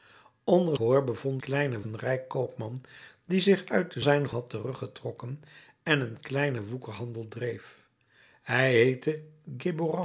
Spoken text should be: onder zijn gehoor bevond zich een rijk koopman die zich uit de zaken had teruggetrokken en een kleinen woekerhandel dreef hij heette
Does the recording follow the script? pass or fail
fail